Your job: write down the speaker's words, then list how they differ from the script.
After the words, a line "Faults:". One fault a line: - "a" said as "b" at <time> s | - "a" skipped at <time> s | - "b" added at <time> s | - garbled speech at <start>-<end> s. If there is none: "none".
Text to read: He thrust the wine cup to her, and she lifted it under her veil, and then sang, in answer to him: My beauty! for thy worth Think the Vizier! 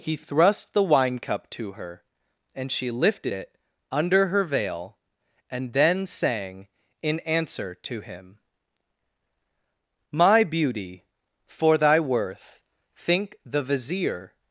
He thrust the wine cup to her, and she lifted it under her veil, and then sang, in answer to him: My beauty! for thy worth Think the Vizier!
Faults:
none